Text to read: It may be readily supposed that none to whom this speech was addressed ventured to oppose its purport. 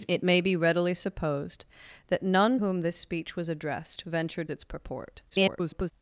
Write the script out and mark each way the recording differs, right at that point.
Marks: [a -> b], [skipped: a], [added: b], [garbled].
It may be readily supposed that none [skipped: to] whom this speech was addressed ventured [skipped: to oppose] its purport. [garbled]